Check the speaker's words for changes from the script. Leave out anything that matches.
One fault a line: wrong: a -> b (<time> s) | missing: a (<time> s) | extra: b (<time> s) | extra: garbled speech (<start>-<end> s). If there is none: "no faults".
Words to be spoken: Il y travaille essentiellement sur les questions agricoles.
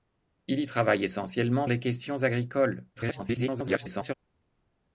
missing: sur (1.7 s)
extra: garbled speech (3.0-4.1 s)